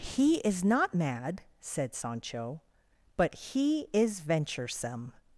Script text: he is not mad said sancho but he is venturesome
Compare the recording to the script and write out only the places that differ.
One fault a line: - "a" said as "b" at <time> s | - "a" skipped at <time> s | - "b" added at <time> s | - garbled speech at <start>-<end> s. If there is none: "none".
none